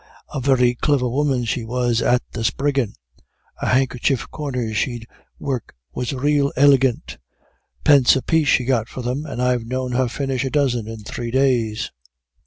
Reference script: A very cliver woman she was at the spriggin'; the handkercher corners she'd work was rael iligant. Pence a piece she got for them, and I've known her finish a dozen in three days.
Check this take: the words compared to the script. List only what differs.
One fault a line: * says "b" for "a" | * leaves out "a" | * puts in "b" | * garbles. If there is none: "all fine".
all fine